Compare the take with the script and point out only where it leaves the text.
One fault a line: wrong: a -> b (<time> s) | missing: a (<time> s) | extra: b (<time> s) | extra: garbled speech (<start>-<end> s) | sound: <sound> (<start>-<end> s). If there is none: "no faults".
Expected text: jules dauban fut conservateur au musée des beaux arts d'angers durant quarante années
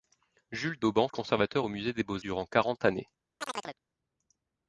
missing: fut (1.1 s)
missing: arts d'angers (2.2 s)
sound: chirp (3.4-3.8 s)